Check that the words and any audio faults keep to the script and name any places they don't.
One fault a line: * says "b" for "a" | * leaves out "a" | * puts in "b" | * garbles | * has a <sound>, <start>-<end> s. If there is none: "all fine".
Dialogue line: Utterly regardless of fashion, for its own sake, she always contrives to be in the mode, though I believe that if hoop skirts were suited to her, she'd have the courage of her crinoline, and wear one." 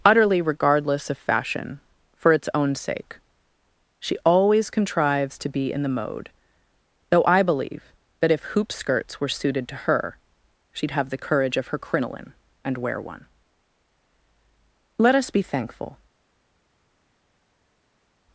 * puts in "Let us be thankful"